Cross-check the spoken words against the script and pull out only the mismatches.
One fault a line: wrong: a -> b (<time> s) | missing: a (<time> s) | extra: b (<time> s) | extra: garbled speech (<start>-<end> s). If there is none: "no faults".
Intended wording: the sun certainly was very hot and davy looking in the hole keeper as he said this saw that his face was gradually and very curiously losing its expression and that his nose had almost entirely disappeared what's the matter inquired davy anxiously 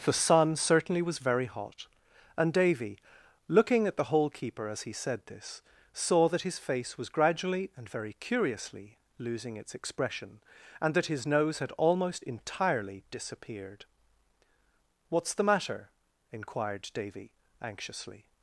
wrong: in -> at (3.9 s)